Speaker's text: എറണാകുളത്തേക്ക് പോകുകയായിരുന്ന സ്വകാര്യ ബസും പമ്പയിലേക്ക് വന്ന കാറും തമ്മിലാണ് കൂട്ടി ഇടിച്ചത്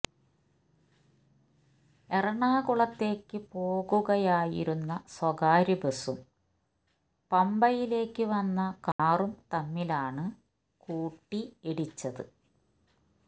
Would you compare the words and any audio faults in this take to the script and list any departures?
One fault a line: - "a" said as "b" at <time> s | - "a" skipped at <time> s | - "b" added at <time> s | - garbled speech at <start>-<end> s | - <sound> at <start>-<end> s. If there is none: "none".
- dropout at 8.9-9.0 s